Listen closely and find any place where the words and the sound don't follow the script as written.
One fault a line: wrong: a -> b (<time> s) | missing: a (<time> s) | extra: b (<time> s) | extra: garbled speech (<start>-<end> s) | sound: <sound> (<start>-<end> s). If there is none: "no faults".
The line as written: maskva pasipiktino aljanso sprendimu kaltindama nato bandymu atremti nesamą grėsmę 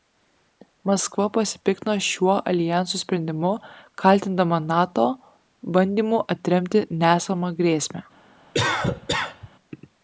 extra: šiuo (2.0 s)
sound: cough (8.5-9.5 s)